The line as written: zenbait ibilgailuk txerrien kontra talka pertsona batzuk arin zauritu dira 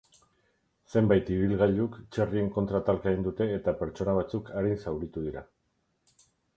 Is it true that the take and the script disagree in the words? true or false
true